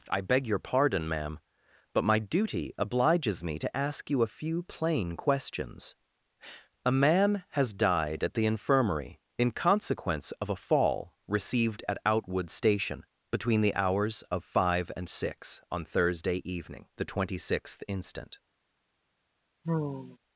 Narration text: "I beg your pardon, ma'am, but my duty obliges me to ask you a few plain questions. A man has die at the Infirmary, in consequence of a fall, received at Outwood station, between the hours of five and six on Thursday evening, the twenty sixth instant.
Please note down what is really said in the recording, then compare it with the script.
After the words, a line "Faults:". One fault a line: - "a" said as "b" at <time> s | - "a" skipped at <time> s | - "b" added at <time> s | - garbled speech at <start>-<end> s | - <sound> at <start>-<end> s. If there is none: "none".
"I beg your pardon, ma'am, but my duty obliges me to ask you a few plain questions. A man has died at the Infirmary, in consequence of a fall, received at Outwood station, between the hours of five and six on Thursday evening, the twenty sixth instant.
Faults:
- "die" said as "died" at 7.7 s
- sigh at 19.6-20.2 s